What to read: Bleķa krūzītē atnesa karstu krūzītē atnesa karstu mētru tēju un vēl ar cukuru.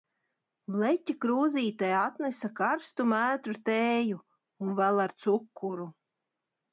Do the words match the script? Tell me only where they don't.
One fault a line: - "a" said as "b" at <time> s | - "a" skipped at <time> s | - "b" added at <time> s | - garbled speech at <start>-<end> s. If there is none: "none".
- "krūzītē atnesa karstu" skipped at 3.0 s